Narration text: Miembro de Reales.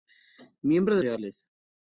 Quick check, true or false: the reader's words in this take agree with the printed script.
true